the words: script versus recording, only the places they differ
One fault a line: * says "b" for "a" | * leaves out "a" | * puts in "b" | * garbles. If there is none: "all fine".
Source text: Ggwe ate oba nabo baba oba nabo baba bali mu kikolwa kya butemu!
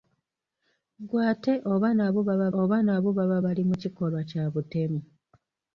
all fine